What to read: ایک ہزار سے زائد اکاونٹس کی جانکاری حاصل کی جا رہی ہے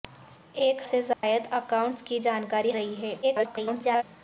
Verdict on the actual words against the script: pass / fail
fail